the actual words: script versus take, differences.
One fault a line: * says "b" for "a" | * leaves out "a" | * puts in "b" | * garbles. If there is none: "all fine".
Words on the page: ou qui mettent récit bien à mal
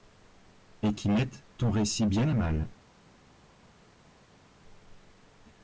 * says "et" for "ou"
* puts in "ton"